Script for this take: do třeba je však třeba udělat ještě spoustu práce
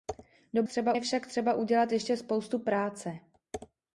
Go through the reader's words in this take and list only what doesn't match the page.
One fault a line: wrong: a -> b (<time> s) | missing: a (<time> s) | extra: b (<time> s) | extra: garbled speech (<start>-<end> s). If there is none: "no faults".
no faults